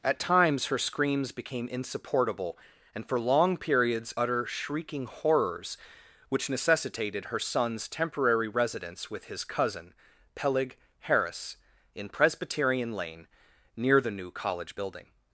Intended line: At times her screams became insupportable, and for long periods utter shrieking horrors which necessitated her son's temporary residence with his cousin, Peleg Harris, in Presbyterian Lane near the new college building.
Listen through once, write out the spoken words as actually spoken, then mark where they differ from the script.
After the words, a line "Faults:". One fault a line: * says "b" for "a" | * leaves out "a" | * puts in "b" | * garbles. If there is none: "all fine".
At times her screams became insupportable, and for long periods utter shrieking horrors which necessitated her son's temporary residence with his cousin, Peleg Harris, in Presbyterian Lane near the new college building.
Faults:
all fine